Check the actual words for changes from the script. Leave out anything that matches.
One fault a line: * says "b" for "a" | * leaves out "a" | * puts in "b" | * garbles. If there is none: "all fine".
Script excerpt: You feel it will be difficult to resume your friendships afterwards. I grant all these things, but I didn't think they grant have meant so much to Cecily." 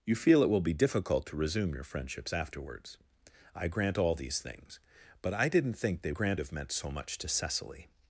all fine